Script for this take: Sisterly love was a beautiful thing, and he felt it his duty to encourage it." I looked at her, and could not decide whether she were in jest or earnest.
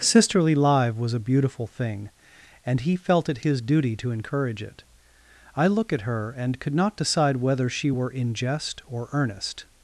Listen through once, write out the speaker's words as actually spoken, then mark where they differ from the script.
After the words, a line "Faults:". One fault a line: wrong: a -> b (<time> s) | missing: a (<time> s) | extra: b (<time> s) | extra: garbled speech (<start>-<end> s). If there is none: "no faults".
Sisterly live was a beautiful thing, and he felt it his duty to encourage it." I look at her, and could not decide whether she were in jest or earnest.
Faults:
wrong: love -> live (0.6 s)
wrong: looked -> look (5.7 s)